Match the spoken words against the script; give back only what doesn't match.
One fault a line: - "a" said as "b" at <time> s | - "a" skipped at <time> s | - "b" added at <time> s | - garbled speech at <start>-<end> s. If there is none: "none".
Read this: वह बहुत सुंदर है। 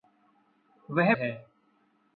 - "बहुत सुंदर" skipped at 1.1 s